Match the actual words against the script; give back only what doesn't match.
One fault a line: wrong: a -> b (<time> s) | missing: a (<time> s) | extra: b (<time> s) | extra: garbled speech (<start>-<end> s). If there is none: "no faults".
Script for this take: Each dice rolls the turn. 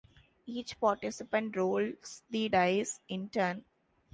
wrong: dice -> participant (0.8 s)
extra: dice in (2.5 s)